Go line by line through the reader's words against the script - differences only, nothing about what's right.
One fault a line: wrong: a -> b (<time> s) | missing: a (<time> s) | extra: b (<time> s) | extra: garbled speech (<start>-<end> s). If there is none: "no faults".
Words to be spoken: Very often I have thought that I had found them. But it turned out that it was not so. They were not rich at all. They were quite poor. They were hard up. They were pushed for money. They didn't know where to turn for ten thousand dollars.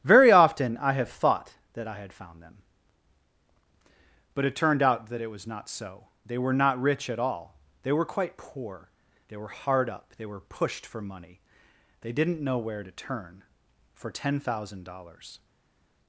no faults